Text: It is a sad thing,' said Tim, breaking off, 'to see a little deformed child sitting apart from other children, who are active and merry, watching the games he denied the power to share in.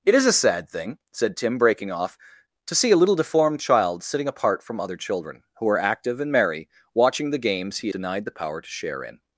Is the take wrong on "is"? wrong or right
right